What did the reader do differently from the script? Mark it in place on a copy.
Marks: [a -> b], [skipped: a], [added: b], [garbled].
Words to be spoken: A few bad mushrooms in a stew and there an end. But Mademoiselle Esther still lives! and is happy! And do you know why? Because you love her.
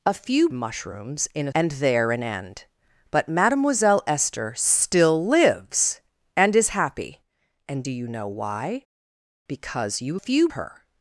A few [skipped: bad] mushrooms in a [skipped: stew] and there an end. But Mademoiselle Esther still lives! and is happy! And do you know why? Because you [love -> few] her.